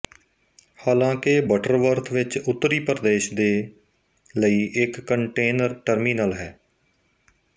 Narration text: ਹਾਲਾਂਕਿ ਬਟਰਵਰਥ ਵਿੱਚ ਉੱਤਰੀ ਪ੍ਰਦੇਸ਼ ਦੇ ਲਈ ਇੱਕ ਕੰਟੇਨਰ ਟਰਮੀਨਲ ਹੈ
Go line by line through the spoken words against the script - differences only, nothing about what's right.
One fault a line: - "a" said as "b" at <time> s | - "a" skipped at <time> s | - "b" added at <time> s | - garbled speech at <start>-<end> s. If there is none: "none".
none